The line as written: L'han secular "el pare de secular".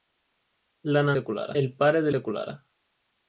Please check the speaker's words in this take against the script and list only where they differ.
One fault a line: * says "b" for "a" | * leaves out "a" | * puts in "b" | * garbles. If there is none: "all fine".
all fine